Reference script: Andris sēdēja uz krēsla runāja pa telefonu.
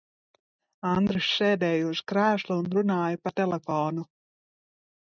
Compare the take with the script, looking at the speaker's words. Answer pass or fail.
fail